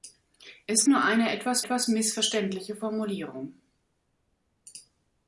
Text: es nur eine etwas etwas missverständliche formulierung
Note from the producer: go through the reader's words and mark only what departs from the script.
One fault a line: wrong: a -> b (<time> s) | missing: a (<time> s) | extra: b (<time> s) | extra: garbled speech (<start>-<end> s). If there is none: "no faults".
no faults